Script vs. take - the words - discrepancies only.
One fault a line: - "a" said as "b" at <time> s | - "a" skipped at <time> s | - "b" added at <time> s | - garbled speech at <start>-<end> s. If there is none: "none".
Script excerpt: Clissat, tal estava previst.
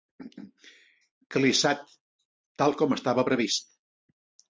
- "com" added at 2.8 s